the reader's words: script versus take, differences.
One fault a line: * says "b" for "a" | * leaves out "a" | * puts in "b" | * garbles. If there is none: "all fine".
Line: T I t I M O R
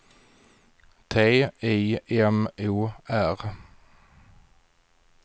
* leaves out "t I"